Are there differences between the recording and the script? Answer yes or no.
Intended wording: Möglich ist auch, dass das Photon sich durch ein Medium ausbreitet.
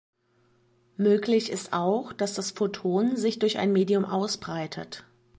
no